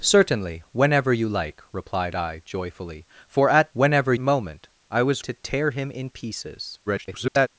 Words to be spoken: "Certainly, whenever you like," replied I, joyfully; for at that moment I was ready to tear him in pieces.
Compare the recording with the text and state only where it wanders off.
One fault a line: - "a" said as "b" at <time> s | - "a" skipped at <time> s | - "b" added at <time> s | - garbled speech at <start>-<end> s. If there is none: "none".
- "that" said as "whenever" at 3.7 s
- "ready" skipped at 5.2 s
- garbled speech at 6.9-7.5 s